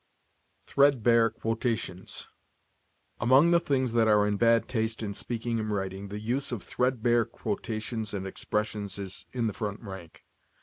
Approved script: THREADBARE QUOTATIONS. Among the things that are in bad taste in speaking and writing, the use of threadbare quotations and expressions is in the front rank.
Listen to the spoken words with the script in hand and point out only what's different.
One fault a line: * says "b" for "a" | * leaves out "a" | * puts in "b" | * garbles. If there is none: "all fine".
all fine